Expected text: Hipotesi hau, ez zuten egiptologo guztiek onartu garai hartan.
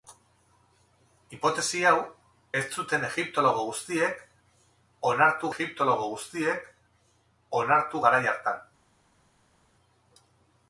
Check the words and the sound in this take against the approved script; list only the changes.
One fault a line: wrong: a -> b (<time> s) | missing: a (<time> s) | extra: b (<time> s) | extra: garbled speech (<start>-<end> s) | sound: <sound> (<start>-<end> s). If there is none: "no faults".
extra: egiptologo guztiek onartu (5.5 s)